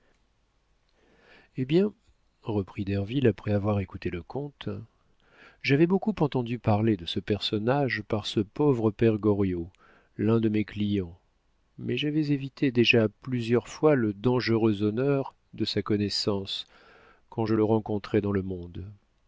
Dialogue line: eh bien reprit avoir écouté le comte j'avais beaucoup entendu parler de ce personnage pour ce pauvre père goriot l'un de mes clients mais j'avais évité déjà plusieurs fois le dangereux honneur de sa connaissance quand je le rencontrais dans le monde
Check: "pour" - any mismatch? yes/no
yes